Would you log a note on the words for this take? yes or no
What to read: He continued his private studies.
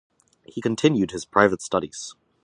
no